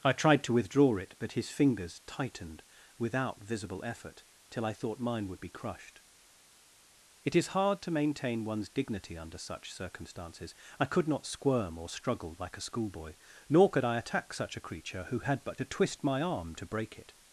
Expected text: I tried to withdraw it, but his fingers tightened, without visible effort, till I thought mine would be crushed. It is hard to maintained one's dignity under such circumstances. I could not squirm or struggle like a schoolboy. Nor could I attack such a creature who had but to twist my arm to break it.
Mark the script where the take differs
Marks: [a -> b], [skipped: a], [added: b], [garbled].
I tried to withdraw it, but his fingers tightened, without visible effort, till I thought mine would be crushed. It is hard to [maintained -> maintain] one's dignity under such circumstances. I could not squirm or struggle like a schoolboy. Nor could I attack such a creature who had but to twist my arm to break it.